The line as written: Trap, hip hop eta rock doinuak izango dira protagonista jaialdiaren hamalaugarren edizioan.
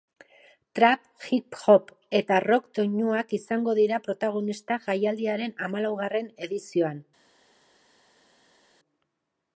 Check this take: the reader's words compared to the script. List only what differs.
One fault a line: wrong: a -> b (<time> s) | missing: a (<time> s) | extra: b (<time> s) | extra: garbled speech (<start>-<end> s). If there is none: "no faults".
no faults